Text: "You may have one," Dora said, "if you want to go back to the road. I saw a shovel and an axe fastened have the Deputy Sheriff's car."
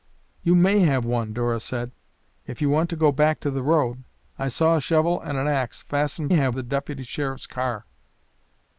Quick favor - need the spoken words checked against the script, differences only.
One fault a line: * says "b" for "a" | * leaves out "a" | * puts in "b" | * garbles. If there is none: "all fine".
all fine